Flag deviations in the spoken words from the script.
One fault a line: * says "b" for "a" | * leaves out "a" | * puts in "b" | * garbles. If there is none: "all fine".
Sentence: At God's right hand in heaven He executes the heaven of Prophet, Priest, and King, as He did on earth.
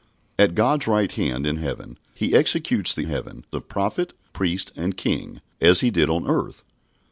all fine